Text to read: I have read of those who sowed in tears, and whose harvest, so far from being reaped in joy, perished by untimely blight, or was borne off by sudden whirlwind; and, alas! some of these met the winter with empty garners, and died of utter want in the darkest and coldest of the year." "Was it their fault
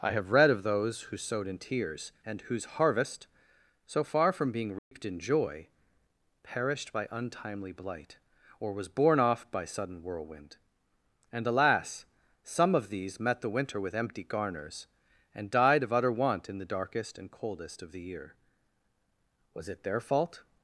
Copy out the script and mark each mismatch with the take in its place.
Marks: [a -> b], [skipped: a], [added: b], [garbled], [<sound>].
I have read of those who sowed in tears, and whose harvest, so far from being reaped [dropout] in joy, perished by untimely blight, or was borne off by sudden whirlwind; and, alas! some of these met the winter with empty garners, and died of utter want in the darkest and coldest of the year." "Was it their fault